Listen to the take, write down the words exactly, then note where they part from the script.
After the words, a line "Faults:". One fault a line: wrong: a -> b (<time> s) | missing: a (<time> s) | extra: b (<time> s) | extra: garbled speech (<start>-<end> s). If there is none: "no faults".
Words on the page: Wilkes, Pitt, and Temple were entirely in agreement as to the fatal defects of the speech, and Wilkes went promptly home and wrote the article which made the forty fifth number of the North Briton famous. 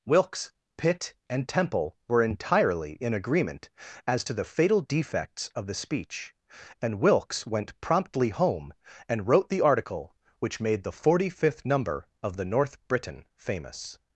Wilkes, Pitt, and Temple were entirely in agreement as to the fatal defects of the speech, and Wilkes went promptly home and wrote the article which made the forty fifth number of the North Briton famous.
Faults:
no faults